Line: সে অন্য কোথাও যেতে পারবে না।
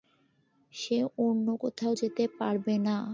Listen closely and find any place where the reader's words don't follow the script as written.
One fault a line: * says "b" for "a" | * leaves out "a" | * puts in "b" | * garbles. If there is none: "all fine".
all fine